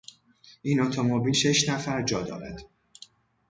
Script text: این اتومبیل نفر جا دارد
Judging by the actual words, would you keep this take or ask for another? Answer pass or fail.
fail